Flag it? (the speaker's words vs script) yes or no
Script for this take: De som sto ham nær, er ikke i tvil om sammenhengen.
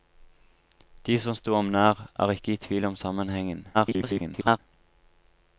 yes